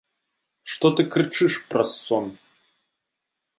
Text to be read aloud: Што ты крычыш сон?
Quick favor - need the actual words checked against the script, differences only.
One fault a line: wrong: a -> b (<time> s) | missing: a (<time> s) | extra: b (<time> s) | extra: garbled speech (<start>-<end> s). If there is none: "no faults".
extra: праз (1.7 s)